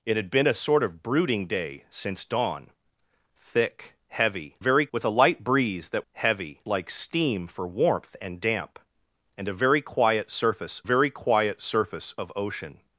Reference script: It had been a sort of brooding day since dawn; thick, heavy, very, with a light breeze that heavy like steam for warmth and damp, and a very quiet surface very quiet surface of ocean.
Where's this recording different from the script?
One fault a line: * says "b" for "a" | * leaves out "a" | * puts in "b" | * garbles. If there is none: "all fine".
all fine